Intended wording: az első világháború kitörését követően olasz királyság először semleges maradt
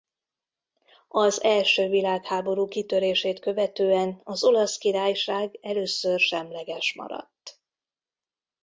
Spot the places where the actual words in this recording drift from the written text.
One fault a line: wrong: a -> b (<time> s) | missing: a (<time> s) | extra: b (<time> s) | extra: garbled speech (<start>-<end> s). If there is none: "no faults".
extra: az (4.2 s)